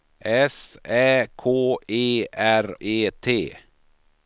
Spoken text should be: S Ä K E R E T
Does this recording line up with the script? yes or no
yes